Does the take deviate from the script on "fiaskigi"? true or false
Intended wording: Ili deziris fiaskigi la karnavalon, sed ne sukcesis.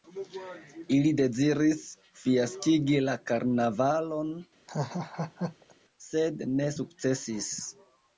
false